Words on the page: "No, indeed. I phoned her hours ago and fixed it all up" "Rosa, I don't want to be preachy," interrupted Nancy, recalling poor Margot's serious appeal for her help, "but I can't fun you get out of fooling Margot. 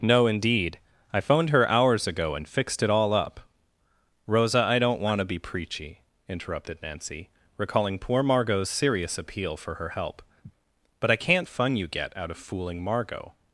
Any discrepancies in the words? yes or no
no